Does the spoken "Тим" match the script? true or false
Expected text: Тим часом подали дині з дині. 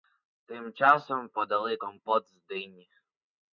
true